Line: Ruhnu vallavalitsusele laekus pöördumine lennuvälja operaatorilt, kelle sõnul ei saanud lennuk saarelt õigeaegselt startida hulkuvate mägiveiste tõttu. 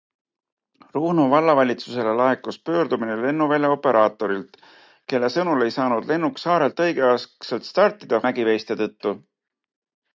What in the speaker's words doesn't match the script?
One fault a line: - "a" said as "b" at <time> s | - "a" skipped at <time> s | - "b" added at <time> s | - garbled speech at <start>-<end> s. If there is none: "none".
- "hulkuvate" skipped at 8.2 s